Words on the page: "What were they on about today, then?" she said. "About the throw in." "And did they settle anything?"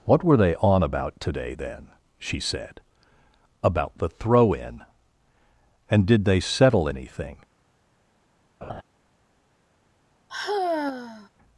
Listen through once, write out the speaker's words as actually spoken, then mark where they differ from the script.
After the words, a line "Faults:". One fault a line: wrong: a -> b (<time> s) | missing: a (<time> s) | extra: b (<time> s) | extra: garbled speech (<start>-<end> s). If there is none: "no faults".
"What were they on about today, then?" she said. "About the throw in." "And did they settle anything?"
Faults:
no faults